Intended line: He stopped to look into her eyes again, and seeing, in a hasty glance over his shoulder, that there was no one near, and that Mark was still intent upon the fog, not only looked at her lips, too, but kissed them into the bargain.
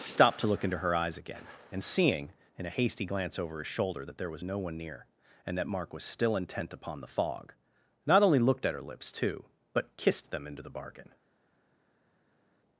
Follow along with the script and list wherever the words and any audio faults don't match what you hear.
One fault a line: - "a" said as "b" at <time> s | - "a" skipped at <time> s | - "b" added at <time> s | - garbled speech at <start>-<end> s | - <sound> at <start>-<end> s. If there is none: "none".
- "He" skipped at 0.1 s